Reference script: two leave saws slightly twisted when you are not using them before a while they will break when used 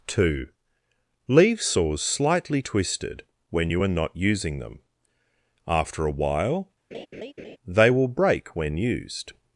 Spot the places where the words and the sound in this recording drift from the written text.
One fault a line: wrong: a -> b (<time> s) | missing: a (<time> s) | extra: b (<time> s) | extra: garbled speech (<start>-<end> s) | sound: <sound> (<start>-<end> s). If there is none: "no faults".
wrong: before -> after (5.7 s)
sound: laugh (6.9-7.6 s)